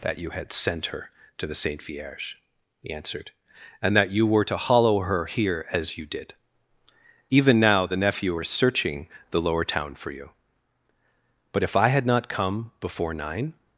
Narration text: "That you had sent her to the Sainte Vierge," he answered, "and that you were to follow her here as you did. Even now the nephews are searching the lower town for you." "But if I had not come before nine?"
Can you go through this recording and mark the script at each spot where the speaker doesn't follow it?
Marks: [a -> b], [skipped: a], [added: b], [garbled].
"That you had sent her to the Sainte Vierge," he answered, "and that you were to [follow -> hollow] her here as you did. Even now the [nephews -> nephew] are searching the lower town for you." "But if I had not come before nine?"